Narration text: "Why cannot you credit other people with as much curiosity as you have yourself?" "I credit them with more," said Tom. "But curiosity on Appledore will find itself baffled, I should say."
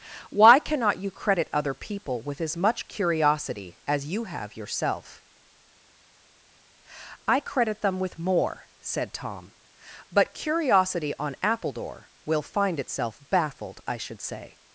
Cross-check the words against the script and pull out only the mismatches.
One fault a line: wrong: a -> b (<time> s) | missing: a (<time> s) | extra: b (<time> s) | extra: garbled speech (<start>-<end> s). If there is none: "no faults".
no faults